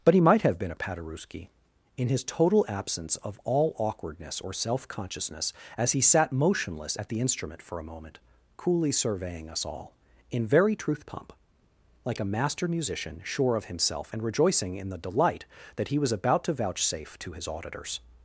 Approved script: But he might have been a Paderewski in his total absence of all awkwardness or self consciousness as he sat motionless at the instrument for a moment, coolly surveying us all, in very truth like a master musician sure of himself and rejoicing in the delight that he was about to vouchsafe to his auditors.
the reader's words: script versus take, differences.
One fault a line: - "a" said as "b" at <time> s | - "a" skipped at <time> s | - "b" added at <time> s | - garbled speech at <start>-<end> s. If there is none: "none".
- "pump" added at 11.1 s